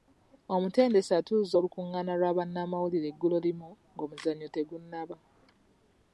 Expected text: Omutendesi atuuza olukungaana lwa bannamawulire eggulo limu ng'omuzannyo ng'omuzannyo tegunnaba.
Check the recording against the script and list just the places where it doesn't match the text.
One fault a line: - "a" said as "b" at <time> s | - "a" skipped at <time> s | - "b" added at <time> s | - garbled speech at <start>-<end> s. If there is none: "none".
- "ng'omuzannyo" skipped at 4.5 s